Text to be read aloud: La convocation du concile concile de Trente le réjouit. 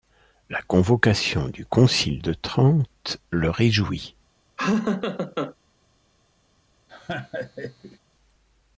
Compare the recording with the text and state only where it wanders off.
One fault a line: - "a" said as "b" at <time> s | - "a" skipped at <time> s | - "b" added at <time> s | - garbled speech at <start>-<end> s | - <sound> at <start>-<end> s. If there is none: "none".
- "concile" skipped at 2.2 s
- laugh at 4.6-5.5 s
- laugh at 6.9-8.0 s